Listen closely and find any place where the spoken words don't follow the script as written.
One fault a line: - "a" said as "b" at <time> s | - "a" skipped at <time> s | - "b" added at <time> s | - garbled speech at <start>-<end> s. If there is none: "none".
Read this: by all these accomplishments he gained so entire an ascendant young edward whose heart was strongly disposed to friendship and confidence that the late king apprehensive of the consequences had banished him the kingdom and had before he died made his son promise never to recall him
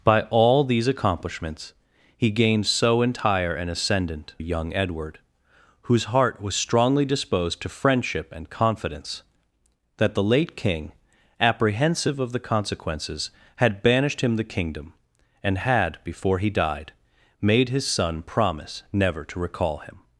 none